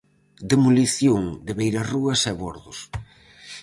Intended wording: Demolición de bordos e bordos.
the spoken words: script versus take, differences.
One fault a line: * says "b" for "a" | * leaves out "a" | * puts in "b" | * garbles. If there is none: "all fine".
* says "beirarrúas" for "bordos"